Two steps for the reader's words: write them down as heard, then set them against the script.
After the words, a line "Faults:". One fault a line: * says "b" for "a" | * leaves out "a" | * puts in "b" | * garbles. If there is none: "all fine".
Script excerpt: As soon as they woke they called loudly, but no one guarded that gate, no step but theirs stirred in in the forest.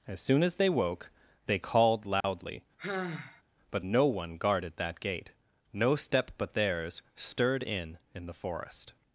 As soon as they woke they called loudly, but no one guarded that gate, no step but theirs stirred in in the forest.
Faults:
all fine